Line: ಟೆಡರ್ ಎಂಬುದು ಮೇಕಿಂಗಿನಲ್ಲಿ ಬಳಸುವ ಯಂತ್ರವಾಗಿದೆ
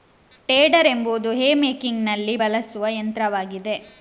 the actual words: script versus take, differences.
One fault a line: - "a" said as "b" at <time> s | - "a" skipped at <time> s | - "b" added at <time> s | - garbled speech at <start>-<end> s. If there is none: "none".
- "ಹೇ" added at 1.3 s